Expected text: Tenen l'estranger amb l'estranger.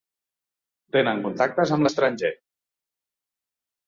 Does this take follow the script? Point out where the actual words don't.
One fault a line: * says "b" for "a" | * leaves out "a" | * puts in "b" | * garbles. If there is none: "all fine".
* says "contactes" for "l'estranger"